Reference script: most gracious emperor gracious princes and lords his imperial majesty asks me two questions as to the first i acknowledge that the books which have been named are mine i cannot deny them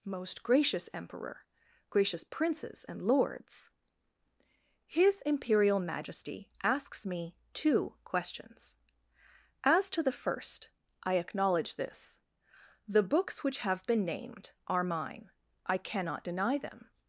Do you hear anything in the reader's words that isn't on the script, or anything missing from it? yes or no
yes